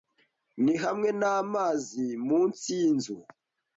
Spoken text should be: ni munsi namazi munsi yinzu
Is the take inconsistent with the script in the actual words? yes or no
yes